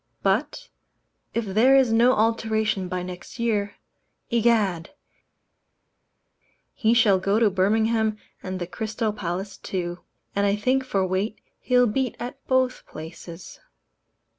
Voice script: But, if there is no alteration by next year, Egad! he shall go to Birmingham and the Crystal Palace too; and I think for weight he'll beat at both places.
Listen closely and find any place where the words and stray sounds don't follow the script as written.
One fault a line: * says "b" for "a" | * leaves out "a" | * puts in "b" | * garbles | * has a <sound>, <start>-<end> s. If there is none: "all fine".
all fine